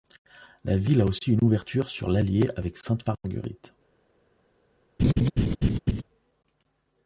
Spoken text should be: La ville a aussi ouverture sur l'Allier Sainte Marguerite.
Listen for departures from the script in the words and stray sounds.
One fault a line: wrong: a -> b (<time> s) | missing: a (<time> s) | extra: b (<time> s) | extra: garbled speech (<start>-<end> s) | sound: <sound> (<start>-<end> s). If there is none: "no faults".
extra: une (1.3 s)
extra: avec (2.6 s)
sound: laugh (5.0-6.0 s)